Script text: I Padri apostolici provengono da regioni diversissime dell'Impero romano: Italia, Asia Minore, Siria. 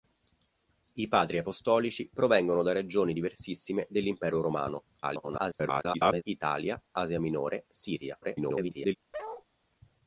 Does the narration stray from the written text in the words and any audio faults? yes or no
yes